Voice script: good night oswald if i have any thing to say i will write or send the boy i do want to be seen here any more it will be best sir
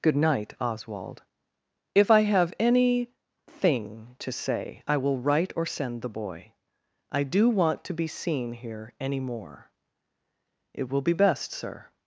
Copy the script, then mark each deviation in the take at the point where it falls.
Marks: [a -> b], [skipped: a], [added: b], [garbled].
good night oswald if i have any thing to say i will write or send the boy i do want to be seen here any more it will be best sir